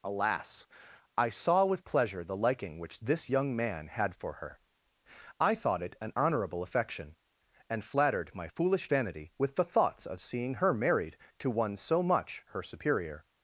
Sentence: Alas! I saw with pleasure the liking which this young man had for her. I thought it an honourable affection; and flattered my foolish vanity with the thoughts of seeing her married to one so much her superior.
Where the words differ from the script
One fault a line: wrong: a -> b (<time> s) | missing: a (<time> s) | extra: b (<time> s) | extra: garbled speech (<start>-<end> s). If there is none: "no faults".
no faults